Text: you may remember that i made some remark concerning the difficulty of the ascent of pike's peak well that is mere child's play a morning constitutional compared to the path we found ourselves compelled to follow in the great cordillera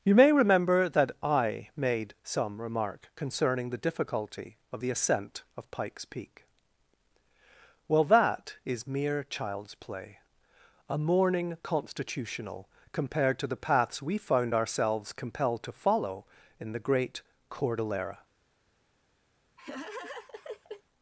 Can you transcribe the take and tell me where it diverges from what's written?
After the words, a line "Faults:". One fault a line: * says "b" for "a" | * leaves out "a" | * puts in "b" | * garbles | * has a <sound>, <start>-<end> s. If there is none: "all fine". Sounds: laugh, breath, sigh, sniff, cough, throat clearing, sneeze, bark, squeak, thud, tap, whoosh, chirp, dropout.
you may remember that i made some remark concerning the difficulty of the ascent of pike's peak well that is mere child's play a morning constitutional compared to the paths we found ourselves compelled to follow in the great cordillera
Faults:
* says "paths" for "path"
* has a laugh, 19.6-20.8 s